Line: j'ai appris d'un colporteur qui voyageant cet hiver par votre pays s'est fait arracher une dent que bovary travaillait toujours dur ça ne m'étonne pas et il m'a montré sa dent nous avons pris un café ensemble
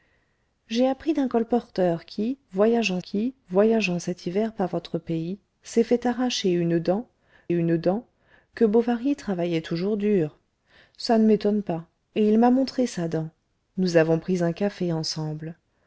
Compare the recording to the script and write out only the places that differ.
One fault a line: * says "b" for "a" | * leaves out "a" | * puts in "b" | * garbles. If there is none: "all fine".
* puts in "qui voyageant"
* puts in "une dent"